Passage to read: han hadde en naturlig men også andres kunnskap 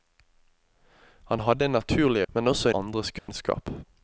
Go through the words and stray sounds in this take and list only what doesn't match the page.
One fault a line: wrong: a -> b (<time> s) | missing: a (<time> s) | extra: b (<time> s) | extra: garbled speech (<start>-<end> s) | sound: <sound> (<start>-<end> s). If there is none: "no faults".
sound: dropout (3.2-3.3 s)